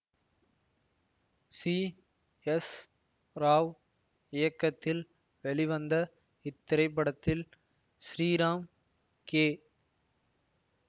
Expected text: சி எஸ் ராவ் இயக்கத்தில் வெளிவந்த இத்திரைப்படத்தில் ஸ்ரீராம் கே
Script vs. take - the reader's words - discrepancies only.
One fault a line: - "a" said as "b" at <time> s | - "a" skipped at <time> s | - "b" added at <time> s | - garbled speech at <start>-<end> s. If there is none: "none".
none